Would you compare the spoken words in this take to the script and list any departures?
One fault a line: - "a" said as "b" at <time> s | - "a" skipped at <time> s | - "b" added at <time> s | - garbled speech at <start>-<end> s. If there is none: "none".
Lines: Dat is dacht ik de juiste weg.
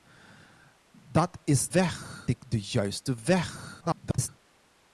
- "dacht" said as "weg" at 1.7 s
- garbled speech at 3.8-4.3 s